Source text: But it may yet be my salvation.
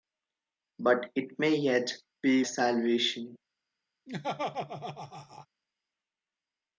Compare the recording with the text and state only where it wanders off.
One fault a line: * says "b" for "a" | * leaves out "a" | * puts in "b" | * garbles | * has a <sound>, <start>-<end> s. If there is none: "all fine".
* leaves out "my"
* has a laugh, 4.1-5.5 s